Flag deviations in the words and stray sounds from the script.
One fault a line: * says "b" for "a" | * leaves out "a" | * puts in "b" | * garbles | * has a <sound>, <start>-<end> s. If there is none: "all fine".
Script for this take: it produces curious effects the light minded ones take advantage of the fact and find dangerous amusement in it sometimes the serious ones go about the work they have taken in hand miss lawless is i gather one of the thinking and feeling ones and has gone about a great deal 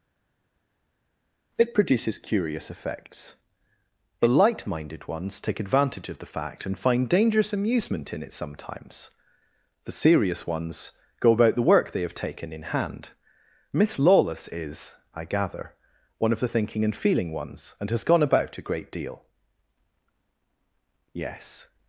* puts in "yes"